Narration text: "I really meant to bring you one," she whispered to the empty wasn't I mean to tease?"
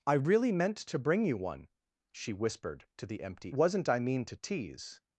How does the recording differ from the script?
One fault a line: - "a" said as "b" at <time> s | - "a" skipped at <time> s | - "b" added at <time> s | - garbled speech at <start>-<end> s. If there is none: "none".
none